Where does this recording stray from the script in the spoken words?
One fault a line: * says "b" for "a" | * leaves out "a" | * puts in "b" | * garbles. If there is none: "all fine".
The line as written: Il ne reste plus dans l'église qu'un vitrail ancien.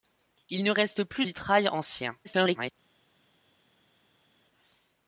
* leaves out "dans l'église qu'un"
* garbles